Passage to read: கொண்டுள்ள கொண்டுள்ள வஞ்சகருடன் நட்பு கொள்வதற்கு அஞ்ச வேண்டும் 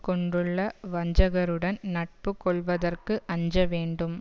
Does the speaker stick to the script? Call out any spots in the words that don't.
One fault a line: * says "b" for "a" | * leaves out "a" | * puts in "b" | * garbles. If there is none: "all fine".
* leaves out "கொண்டுள்ள"